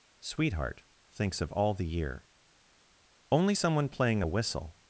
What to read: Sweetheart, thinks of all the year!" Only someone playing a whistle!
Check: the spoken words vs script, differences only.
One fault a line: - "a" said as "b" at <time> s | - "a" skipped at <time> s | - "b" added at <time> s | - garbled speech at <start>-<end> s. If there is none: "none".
none